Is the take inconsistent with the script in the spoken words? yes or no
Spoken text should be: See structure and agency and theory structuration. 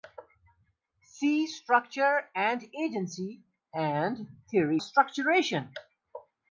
no